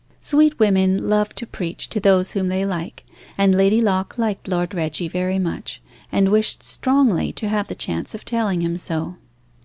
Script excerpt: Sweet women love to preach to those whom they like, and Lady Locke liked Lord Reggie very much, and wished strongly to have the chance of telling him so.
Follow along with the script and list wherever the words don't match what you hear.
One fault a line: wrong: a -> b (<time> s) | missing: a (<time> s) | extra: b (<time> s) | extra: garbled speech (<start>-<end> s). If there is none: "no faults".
no faults